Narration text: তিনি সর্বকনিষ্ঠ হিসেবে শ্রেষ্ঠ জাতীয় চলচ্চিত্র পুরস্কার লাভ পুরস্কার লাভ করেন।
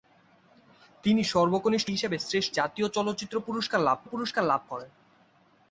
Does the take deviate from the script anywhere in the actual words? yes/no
no